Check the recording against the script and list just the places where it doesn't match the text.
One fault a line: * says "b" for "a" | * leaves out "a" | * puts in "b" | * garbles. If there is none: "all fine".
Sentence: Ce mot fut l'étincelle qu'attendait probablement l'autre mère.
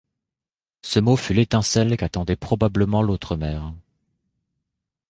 all fine